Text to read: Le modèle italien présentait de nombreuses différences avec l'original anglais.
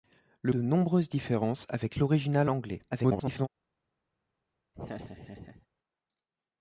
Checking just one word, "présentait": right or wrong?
wrong